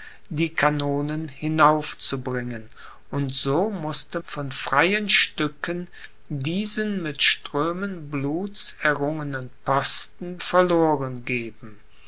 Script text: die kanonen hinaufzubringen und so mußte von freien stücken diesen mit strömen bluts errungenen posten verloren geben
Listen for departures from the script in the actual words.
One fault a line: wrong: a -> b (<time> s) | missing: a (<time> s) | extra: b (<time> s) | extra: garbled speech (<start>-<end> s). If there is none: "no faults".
no faults